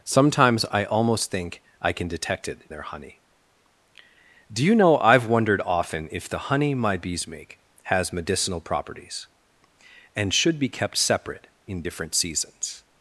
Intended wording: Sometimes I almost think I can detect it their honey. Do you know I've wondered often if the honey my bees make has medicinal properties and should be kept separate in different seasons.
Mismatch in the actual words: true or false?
false